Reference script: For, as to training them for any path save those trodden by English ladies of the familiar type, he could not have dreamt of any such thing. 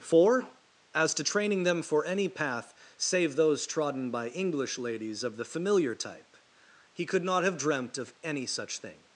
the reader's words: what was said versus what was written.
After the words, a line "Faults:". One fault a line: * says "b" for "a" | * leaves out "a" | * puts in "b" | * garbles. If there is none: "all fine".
For, as to training them for any path save those trodden by English ladies of the familiar type, he could not have dreamt of any such thing.
Faults:
all fine